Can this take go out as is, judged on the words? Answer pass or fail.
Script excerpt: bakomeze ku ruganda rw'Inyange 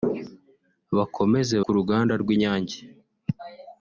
pass